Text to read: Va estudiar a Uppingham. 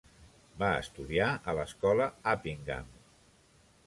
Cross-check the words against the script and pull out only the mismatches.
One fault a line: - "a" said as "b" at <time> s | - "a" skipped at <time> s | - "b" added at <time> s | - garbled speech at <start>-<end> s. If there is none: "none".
- "l'escola" added at 1.6 s